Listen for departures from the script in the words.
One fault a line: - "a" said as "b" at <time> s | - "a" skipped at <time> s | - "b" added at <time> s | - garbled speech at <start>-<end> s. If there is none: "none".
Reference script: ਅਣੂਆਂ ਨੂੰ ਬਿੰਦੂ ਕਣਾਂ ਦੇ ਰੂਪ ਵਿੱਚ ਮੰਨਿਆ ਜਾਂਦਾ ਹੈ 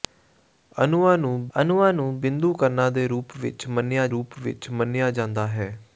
- "ਅਣੂਆਂ ਨੂੰ" added at 1.5 s
- "ਰੂਪ ਵਿੱਚ ਮੰਨਿਆ" added at 4.1 s